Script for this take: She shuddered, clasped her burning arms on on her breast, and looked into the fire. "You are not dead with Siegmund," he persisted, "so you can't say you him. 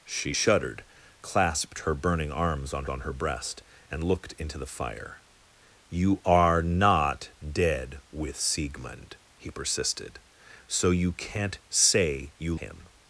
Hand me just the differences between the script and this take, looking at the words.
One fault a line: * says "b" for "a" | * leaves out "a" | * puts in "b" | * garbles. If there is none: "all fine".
all fine